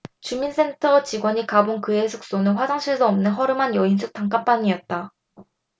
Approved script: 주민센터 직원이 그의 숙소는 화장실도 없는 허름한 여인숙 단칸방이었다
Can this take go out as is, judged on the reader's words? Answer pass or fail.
fail